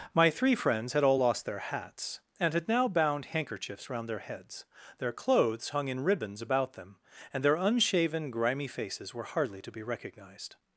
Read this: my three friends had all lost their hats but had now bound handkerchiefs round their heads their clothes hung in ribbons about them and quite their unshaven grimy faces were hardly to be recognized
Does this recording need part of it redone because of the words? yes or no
yes